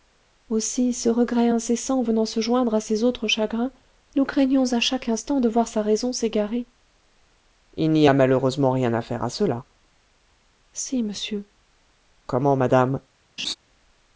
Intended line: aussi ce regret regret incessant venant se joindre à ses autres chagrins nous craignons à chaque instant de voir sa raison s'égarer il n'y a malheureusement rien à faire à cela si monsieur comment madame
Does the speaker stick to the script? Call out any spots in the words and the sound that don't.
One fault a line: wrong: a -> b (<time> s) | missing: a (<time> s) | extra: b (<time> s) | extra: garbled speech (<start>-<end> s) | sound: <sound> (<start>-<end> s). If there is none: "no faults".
missing: regret (1.5 s)
sound: laugh (13.4-13.5 s)